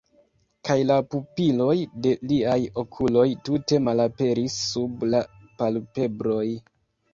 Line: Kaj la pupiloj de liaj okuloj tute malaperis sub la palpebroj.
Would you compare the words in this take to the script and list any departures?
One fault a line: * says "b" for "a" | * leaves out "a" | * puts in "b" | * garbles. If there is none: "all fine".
all fine